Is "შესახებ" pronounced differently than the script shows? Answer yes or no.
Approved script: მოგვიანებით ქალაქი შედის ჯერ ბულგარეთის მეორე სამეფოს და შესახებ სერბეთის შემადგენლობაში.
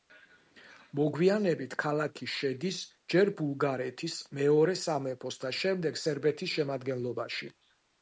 yes